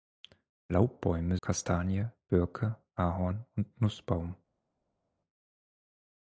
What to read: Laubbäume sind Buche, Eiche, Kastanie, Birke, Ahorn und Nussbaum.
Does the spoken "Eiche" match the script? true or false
false